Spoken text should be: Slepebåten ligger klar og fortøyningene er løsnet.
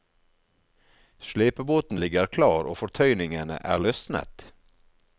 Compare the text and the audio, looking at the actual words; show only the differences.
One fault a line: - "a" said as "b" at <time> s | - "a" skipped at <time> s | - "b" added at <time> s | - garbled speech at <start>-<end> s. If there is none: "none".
none